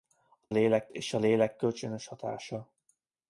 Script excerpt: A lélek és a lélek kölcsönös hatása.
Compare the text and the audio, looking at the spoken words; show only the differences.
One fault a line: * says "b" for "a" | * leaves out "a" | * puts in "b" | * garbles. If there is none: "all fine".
all fine